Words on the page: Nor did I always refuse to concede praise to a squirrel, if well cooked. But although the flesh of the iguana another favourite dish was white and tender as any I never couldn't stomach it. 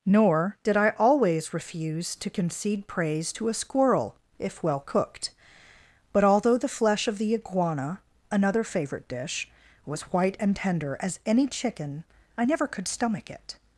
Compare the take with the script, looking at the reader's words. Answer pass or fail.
fail